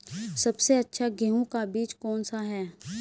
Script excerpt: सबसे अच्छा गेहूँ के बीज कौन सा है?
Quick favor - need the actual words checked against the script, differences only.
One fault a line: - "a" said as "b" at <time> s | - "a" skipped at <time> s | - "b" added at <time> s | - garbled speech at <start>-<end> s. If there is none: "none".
- "के" said as "का" at 1.4 s